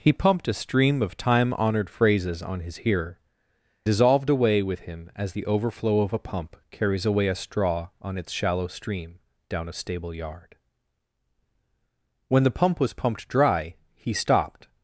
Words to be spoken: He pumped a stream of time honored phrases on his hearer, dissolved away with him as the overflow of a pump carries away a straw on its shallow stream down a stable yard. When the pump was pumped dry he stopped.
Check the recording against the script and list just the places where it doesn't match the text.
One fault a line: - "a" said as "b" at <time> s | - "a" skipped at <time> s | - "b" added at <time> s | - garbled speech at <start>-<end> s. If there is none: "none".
none